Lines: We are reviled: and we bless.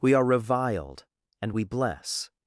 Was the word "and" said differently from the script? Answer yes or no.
no